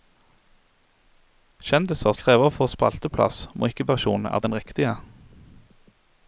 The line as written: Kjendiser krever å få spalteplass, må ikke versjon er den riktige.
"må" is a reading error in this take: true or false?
false